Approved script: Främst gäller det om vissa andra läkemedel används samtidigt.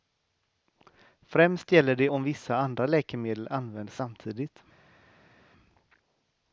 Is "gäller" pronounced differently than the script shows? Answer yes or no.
no